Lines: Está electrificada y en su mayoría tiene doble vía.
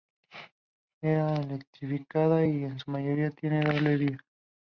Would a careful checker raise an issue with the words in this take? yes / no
no